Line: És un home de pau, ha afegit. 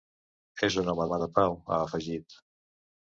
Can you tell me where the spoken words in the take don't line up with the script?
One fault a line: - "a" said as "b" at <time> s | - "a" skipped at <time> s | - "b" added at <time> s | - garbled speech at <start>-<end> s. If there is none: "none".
- "home" added at 1.1 s